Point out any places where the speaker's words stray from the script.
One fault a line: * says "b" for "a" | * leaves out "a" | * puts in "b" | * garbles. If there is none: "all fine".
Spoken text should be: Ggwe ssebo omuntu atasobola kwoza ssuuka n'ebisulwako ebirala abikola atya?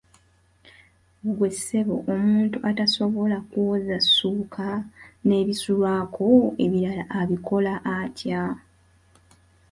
all fine